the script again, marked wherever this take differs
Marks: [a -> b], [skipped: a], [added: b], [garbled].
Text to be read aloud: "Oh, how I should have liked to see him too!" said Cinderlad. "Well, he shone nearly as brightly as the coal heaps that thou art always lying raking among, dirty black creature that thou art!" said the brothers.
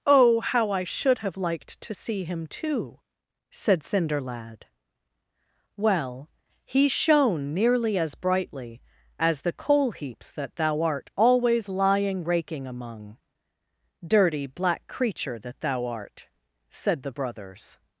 "Oh, how I should have liked to see him too!" said Cinderlad. "Well, he shone nearly as brightly as the coal heaps that thou art always lying raking among, dirty black creature that thou art!" said the brothers.